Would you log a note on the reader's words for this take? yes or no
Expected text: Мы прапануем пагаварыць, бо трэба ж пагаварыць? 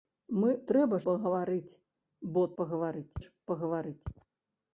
yes